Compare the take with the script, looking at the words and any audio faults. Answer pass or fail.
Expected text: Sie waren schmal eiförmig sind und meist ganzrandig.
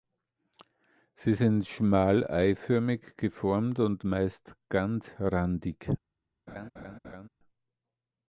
fail